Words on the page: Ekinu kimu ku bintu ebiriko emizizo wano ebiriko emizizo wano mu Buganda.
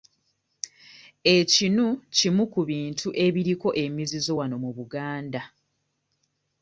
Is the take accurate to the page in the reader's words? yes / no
no